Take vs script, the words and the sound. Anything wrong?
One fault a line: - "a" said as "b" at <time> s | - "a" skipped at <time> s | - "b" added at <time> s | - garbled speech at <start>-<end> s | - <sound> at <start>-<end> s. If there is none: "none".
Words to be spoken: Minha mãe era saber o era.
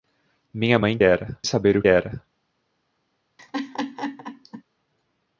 - laugh at 3.4-4.6 s